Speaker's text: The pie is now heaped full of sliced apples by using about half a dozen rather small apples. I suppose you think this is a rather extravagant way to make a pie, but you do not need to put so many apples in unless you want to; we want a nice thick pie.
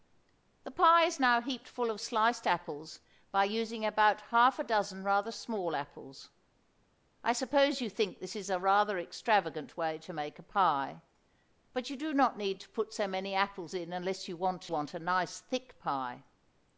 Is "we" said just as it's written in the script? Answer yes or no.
no